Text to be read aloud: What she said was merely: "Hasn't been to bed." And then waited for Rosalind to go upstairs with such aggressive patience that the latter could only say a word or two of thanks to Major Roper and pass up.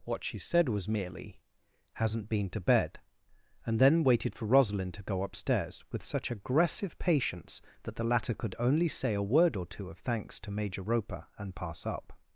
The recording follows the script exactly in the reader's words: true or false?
true